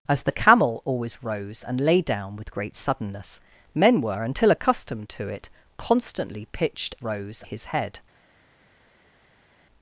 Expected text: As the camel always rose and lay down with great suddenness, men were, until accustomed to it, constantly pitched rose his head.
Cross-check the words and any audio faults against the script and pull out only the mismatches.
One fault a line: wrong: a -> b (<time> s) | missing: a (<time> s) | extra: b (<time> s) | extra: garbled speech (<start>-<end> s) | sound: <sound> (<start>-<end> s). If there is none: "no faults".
no faults